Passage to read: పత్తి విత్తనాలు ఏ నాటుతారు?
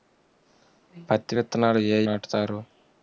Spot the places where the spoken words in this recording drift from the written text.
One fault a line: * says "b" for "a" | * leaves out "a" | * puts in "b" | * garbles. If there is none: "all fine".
all fine